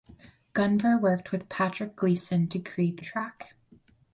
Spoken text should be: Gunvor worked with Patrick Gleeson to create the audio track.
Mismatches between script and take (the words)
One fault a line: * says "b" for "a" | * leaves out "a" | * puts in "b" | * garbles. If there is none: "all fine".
* leaves out "the audio"